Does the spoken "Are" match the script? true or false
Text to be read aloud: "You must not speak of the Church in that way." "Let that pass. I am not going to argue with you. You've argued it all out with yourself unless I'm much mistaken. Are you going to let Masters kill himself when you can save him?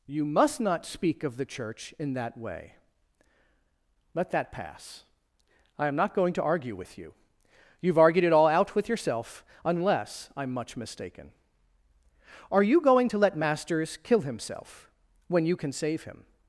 true